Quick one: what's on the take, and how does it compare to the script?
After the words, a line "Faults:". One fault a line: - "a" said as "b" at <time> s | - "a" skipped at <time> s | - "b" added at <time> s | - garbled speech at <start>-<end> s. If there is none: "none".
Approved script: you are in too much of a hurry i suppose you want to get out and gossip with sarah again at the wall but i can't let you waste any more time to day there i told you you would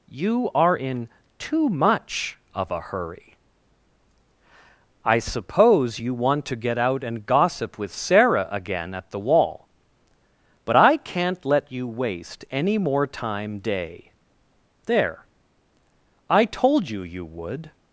you are in too much of a hurry i suppose you want to get out and gossip with sarah again at the wall but i can't let you waste any more time day there i told you you would
Faults:
- "to" skipped at 13.6 s